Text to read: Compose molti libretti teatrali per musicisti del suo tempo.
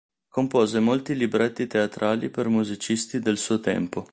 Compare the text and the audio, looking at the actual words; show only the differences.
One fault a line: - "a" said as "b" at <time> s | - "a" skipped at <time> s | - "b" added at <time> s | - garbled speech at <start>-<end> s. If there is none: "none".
none